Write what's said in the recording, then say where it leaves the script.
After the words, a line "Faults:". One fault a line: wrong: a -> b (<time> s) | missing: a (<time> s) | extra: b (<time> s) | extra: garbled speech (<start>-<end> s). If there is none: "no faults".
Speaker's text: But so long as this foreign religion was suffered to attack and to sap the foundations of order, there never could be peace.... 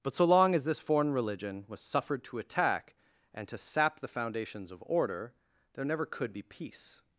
But so long as this foreign religion was suffered to attack and to sap the foundations of order, there never could be peace....
Faults:
no faults